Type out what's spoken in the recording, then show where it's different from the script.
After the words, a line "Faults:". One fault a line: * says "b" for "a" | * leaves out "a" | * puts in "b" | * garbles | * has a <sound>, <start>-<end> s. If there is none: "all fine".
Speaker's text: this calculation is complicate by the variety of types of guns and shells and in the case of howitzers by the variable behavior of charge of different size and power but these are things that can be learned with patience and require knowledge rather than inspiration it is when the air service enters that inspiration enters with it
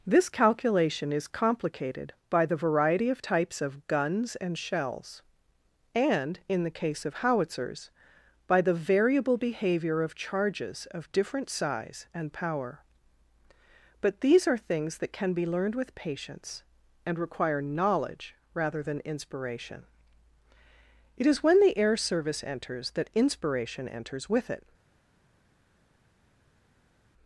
this calculation is complicated by the variety of types of guns and shells and in the case of howitzers by the variable behavior of charges of different size and power but these are things that can be learned with patience and require knowledge rather than inspiration it is when the air service enters that inspiration enters with it
Faults:
* says "complicated" for "complicate"
* says "charges" for "charge"